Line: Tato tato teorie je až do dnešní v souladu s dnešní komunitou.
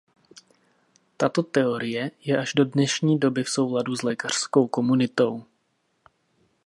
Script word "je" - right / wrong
right